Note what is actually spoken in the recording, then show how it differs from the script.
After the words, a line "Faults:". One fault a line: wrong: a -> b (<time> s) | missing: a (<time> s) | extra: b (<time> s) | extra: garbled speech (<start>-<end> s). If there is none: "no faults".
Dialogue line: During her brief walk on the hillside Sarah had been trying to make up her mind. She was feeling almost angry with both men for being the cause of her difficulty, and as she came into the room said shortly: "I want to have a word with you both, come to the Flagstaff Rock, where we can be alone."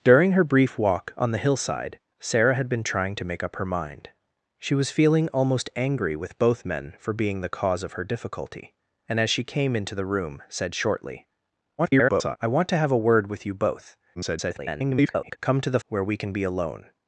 During her brief walk on the hillside Sarah had been trying to make up her mind. She was feeling almost angry with both men for being the cause of her difficulty, and as she came into the room said shortly: [garbled] "I want to have a word with you both, [garbled] come to the Where we can be alone."
Faults:
extra: garbled speech (11.8-12.4 s)
extra: garbled speech (14.1-15.4 s)
missing: Flagstaff Rock (15.8 s)